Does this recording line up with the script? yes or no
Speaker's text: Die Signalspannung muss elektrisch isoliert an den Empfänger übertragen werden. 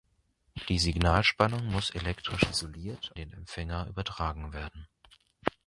no